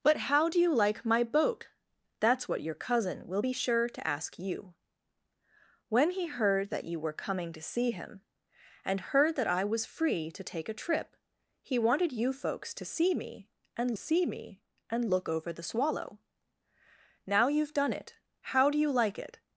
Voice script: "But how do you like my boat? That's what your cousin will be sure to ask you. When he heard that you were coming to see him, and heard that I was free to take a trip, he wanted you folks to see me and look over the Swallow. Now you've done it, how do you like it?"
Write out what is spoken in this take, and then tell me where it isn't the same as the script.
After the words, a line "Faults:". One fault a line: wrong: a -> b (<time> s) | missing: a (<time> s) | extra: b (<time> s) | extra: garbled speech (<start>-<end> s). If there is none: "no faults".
"But how do you like my boat? That's what your cousin will be sure to ask you. When he heard that you were coming to see him, and heard that I was free to take a trip, he wanted you folks to see me and see me and look over the Swallow. Now you've done it, how do you like it?"
Faults:
extra: see me and (14.0 s)